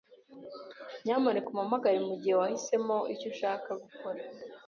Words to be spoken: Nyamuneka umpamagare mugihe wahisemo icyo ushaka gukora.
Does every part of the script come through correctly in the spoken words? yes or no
yes